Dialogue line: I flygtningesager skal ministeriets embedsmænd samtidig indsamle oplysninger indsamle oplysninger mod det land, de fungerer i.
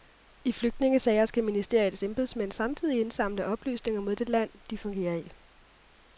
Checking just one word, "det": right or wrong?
right